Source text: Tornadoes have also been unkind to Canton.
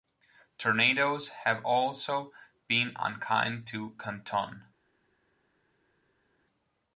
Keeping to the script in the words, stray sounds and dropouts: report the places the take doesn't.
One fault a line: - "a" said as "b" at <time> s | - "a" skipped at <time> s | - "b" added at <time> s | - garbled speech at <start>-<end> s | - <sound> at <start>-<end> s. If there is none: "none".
none